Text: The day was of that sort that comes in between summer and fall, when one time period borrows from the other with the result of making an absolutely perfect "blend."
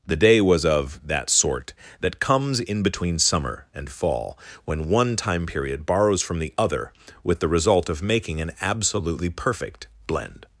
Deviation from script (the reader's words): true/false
false